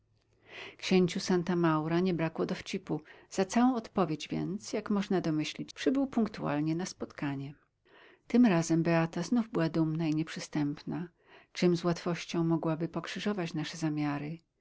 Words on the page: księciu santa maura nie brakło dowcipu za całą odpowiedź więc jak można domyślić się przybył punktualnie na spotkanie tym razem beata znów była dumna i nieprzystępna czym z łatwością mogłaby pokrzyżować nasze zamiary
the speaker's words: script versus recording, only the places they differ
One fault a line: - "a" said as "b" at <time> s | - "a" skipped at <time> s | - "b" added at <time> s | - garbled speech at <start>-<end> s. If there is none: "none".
- "się" skipped at 5.7 s